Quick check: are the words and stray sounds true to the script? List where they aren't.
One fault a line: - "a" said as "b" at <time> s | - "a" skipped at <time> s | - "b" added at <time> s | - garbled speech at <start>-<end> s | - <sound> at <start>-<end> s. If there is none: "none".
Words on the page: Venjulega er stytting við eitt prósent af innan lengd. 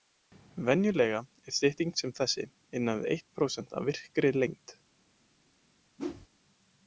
- "sem þessi innan" added at 2.0 s
- "innan" said as "virkri" at 3.9 s
- whoosh at 6.0-6.3 s